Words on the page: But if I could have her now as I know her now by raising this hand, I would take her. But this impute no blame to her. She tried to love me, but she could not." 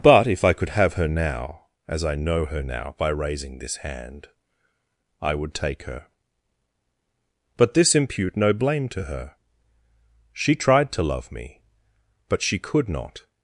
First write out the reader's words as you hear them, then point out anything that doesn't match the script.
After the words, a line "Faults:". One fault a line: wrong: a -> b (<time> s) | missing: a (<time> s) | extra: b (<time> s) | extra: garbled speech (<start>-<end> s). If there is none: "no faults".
But if I could have her now as I know her now by raising this hand, I would take her. But this impute no blame to her. She tried to love me, but she could not."
Faults:
no faults